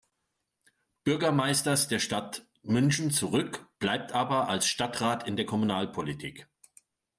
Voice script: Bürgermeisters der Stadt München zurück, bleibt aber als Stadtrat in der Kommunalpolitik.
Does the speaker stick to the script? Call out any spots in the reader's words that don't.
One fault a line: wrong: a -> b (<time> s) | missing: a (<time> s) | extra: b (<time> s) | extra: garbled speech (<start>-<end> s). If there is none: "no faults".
no faults